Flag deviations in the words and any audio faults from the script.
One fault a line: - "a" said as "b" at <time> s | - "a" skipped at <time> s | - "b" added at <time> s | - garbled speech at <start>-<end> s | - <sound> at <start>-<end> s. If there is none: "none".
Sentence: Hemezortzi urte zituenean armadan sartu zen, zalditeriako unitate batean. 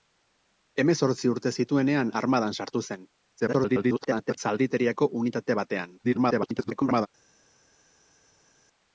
- garbled speech at 3.4-4.4 s
- garbled speech at 6.0-7.1 s